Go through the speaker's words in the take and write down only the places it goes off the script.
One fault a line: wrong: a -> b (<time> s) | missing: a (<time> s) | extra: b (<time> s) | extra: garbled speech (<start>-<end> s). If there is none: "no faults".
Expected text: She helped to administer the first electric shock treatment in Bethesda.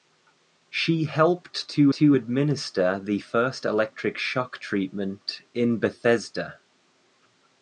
extra: to (1.9 s)